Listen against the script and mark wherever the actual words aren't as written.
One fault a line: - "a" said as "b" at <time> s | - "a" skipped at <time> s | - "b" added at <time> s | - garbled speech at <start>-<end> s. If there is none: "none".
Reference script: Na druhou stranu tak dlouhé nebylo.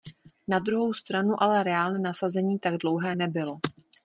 - "ale reálné nasazení" added at 1.4 s